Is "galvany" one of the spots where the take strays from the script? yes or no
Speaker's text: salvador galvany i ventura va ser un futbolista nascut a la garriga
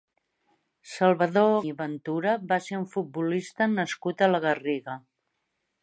yes